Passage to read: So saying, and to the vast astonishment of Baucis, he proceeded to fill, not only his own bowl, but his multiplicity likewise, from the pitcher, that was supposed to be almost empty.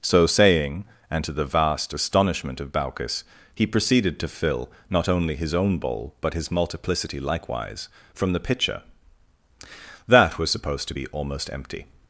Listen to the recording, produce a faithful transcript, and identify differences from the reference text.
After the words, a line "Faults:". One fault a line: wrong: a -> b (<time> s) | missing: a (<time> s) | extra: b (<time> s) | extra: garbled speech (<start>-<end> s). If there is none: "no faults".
So saying, and to the vast astonishment of Baucis, he proceeded to fill, not only his own bowl, but his multiplicity likewise, from the pitcher, that was supposed to be almost empty.
Faults:
no faults